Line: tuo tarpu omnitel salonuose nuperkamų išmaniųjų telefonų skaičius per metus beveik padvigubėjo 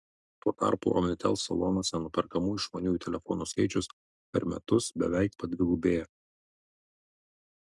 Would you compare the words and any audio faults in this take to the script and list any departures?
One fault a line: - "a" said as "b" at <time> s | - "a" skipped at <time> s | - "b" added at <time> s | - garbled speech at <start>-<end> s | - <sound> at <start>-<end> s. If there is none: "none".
none